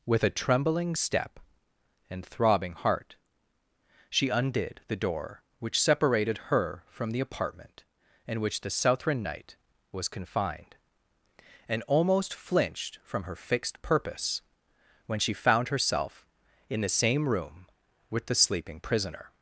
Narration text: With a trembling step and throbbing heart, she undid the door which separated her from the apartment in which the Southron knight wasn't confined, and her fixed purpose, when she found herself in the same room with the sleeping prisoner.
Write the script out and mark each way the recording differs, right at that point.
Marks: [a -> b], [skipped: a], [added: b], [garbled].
With a trembling step and throbbing heart, she undid the door which separated her from the apartment in which the Southron knight [wasn't -> was] confined, and [added: almost flinched from] her fixed purpose, when she found herself in the same room with the sleeping prisoner.